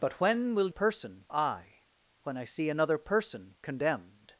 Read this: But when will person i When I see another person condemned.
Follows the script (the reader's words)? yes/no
yes